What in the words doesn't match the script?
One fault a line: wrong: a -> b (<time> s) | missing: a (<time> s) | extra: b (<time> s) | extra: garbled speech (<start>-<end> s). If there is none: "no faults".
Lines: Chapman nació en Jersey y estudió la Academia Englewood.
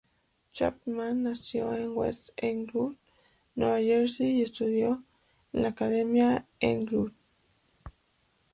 extra: West Englewood Nueva (1.9 s)
extra: en (5.5 s)